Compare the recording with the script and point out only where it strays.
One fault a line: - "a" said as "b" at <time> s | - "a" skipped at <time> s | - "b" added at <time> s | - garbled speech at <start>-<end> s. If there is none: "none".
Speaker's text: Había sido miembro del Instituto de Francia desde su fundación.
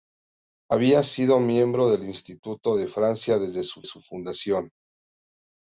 - "su" added at 3.8 s